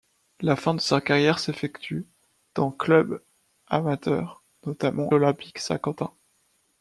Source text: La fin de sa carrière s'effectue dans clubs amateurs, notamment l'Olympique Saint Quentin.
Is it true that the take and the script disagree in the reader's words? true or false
false